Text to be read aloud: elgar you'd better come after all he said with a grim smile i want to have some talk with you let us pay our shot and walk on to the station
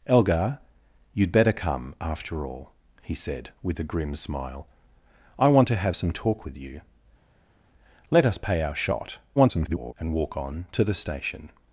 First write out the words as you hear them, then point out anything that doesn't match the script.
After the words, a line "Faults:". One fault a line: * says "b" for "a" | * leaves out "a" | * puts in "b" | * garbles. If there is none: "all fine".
elgar you'd better come after all he said with a grim smile i want to have some talk with you let us pay our shot [garbled] and walk on to the station
Faults:
* garbles